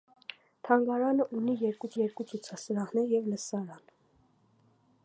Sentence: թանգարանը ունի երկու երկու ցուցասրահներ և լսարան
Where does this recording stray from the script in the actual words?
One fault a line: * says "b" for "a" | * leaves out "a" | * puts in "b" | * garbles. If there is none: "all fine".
all fine